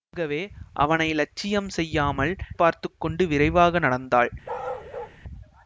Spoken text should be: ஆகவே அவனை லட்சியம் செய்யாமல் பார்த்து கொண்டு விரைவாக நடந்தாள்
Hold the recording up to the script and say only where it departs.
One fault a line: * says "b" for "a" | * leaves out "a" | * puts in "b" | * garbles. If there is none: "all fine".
all fine